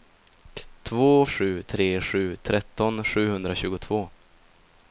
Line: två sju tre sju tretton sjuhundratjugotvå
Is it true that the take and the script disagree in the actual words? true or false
false